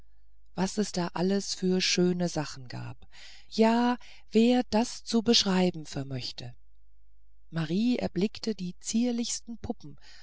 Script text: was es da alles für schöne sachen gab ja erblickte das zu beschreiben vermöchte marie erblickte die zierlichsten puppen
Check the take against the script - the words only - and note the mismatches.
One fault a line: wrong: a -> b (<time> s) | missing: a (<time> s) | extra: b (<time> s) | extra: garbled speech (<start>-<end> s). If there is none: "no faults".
wrong: erblickte -> wer (4.3 s)